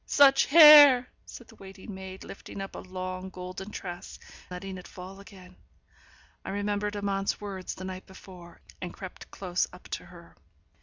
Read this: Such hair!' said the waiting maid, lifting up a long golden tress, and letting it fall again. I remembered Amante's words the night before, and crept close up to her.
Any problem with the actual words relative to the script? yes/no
yes